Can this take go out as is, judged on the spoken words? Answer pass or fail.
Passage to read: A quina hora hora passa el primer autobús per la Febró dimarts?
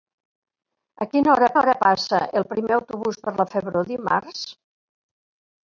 pass